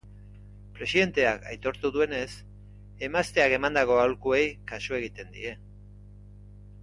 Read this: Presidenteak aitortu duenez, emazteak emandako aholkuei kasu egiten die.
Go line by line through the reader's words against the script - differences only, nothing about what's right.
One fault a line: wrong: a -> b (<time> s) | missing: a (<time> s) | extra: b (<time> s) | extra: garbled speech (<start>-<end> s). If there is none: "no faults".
no faults